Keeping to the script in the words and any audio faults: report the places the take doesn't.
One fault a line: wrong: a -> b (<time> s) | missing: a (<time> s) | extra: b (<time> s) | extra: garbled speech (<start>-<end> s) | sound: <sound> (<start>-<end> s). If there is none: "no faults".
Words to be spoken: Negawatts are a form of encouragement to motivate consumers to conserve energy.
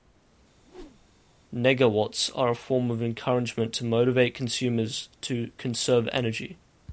sound: whoosh (0.6-1.2 s)